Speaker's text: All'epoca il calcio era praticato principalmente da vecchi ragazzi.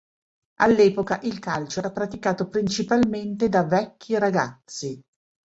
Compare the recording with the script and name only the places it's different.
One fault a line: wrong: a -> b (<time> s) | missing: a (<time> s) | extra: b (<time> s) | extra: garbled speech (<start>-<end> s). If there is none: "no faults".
no faults